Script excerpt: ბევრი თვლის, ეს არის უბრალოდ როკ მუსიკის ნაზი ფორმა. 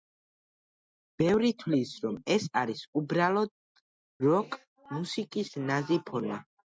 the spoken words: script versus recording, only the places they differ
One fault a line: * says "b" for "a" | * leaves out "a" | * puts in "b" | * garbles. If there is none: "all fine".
* puts in "რომ"